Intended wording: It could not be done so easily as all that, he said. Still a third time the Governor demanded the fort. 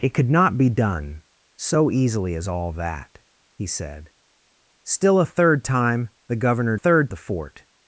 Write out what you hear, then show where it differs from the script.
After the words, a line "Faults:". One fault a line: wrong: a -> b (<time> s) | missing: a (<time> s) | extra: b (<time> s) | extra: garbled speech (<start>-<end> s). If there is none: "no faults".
It could not be done so easily as all that, he said. Still a third time the Governor third the fort.
Faults:
wrong: demanded -> third (6.7 s)